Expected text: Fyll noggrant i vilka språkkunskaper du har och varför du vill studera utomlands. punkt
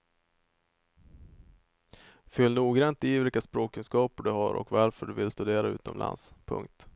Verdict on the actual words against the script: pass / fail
pass